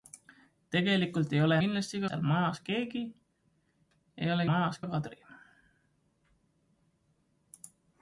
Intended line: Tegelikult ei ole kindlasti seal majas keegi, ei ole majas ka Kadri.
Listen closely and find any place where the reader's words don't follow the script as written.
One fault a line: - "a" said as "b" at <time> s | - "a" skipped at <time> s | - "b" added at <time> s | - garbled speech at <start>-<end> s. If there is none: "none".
none